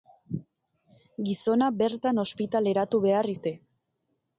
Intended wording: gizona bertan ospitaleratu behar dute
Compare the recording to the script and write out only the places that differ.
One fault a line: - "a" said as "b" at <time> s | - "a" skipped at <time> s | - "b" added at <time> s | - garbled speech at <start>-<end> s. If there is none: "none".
none